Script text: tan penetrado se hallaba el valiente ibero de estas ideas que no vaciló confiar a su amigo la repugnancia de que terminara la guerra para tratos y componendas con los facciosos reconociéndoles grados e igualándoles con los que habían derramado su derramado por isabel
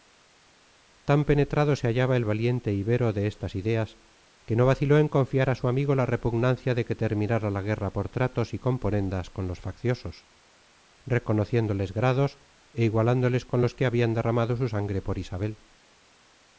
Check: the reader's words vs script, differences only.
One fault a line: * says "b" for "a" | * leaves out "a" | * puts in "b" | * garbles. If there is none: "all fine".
* puts in "en"
* says "por" for "para"
* says "sangre" for "derramado"